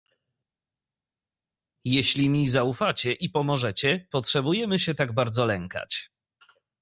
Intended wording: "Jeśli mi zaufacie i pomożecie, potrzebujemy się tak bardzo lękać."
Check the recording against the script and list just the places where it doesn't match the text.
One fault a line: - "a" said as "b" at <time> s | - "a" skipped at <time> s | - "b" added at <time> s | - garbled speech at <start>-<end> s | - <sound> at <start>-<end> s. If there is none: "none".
none